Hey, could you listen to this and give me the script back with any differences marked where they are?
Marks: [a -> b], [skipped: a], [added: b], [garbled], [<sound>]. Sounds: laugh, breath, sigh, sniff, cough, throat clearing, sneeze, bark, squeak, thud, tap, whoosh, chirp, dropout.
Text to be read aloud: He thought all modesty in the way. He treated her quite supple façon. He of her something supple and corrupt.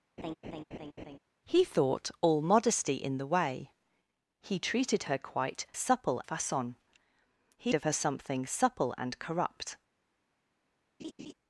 [laugh] He thought all modesty in the way. He treated her quite supple façon. He of her something supple and corrupt. [laugh]